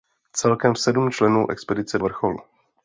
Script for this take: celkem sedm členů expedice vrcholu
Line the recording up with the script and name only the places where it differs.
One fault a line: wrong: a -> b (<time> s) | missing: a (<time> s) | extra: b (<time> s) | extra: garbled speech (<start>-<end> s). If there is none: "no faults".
no faults